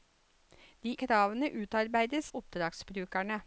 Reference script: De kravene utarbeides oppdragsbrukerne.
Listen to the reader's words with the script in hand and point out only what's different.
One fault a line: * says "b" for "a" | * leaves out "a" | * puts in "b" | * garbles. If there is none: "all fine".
all fine